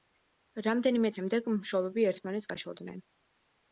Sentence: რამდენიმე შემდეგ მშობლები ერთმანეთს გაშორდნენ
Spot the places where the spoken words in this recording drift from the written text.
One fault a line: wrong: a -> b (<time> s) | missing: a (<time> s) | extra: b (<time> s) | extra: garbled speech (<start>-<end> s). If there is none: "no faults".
no faults